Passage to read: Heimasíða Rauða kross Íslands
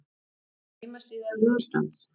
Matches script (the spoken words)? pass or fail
fail